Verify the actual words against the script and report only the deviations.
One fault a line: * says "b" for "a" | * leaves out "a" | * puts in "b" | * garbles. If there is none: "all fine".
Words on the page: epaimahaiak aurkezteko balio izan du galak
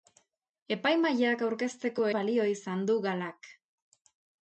all fine